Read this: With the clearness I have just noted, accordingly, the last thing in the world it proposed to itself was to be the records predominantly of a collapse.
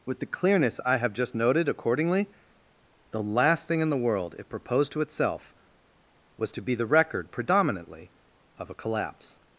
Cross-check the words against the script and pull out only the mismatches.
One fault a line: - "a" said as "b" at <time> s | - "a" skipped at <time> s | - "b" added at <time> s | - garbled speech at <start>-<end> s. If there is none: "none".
- "records" said as "record" at 6.9 s